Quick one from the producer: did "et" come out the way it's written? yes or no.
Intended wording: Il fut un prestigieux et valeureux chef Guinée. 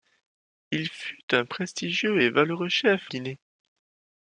yes